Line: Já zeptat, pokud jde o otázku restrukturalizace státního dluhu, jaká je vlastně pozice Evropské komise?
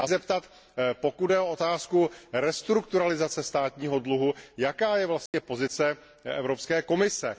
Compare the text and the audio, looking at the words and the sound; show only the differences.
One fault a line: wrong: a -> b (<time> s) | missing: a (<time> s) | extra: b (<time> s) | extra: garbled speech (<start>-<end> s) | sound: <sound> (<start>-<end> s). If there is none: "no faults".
sound: dropout (5.3-5.3 s)